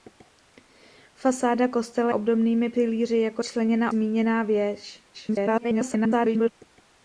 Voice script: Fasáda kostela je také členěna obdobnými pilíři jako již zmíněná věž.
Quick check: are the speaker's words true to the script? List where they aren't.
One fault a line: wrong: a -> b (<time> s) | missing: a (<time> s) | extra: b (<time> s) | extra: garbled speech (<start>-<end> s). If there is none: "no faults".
missing: je také členěna (2.1 s)
wrong: již -> členěna (3.4 s)
extra: garbled speech (5.1-6.5 s)